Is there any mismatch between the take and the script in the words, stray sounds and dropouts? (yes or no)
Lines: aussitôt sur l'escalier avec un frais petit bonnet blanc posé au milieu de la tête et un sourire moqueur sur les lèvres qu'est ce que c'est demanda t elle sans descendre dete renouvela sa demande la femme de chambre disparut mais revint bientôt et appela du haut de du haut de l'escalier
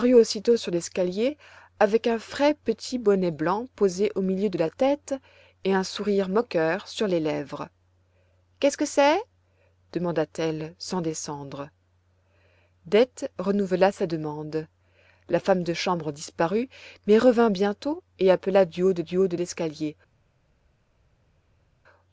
no